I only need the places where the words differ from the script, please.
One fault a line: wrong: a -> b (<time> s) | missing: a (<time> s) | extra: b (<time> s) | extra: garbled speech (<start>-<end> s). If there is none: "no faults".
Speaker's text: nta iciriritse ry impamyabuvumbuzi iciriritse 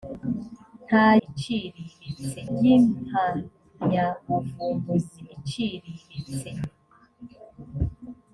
no faults